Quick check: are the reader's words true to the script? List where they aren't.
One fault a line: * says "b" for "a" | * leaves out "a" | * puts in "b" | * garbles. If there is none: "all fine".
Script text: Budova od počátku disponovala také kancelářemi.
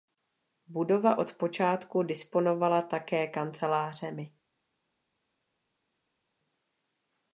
all fine